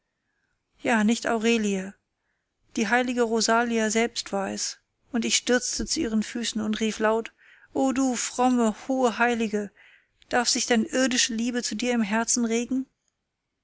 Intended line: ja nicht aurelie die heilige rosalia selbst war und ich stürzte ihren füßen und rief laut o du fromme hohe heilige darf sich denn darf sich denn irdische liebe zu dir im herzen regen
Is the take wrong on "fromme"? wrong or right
right